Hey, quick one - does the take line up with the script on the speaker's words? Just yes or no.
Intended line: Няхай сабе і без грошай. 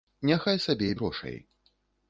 no